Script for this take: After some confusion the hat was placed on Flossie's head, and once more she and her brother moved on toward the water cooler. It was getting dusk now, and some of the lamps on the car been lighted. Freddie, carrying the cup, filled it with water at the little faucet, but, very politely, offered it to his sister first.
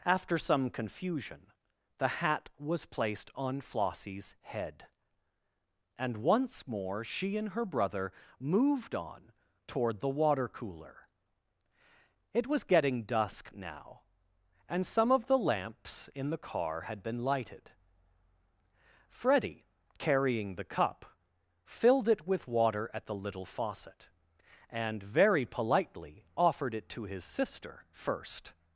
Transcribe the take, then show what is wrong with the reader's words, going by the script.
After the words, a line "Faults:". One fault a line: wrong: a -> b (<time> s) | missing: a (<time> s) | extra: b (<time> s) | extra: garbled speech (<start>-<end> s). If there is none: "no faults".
After some confusion the hat was placed on Flossie's head, and once more she and her brother moved on toward the water cooler. It was getting dusk now, and some of the lamps in the car had been lighted. Freddie, carrying the cup, filled it with water at the little faucet, and, very politely, offered it to his sister first.
Faults:
wrong: on -> in (16.1 s)
extra: had (16.8 s)
wrong: but -> and (24.7 s)